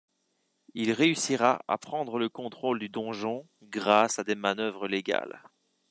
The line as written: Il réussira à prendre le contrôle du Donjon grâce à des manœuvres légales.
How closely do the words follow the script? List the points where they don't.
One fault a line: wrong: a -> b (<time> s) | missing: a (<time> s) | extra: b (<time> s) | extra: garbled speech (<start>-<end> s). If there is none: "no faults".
no faults